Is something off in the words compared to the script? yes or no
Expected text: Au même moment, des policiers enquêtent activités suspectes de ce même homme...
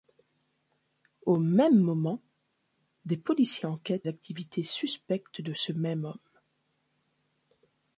no